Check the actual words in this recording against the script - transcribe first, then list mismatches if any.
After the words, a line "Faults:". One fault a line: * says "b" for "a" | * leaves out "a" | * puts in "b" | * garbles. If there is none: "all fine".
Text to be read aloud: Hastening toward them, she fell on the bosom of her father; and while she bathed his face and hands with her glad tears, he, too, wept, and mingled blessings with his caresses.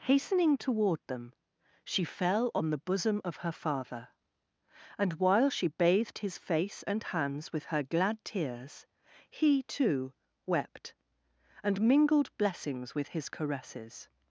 Hastening toward them, she fell on the bosom of her father; and while she bathed his face and hands with her glad tears, he, too, wept, and mingled blessings with his caresses.
Faults:
all fine